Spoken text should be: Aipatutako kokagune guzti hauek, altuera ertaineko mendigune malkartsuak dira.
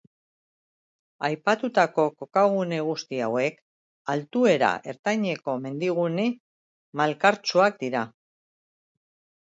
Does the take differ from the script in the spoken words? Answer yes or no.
no